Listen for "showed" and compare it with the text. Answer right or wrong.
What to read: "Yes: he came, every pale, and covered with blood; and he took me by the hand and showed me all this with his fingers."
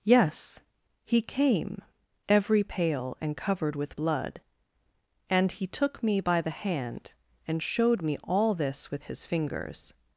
right